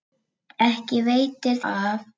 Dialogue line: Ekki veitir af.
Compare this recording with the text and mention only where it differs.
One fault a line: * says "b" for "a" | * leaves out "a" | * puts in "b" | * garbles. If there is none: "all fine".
all fine